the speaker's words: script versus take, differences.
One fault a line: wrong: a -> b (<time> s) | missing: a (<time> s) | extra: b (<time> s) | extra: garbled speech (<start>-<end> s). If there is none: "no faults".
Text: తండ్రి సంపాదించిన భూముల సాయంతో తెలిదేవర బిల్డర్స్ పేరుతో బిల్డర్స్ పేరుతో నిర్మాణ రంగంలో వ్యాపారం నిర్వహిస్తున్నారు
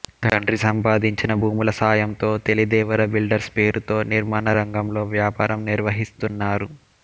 missing: బిల్డర్స్ పేరుతో (4.0 s)